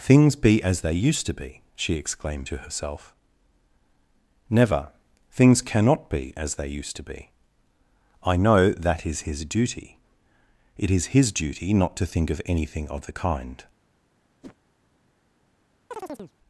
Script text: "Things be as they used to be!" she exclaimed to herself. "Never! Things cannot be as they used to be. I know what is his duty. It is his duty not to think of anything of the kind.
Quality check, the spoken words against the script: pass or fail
fail